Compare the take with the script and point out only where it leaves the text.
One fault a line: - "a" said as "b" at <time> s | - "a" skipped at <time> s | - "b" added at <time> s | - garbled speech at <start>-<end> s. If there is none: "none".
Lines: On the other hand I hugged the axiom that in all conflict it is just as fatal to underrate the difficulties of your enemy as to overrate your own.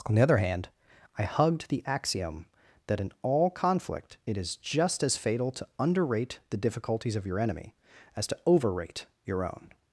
none